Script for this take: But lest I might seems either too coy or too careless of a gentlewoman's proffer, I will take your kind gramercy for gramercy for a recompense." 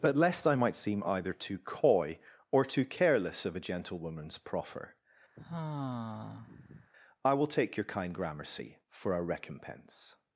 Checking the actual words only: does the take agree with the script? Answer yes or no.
no